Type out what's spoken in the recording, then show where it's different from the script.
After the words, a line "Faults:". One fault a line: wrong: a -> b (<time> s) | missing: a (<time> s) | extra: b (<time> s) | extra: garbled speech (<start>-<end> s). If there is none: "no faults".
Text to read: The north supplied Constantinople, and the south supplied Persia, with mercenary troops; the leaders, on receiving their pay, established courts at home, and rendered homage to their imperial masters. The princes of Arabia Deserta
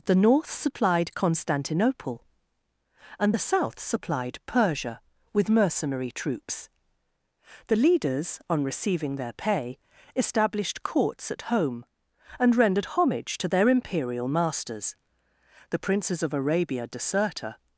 The north supplied Constantinople, and the south supplied Persia, with mercenary troops; the leaders, on receiving their pay, established courts at home, and rendered homage to their imperial masters. The princes of Arabia Deserta
Faults:
no faults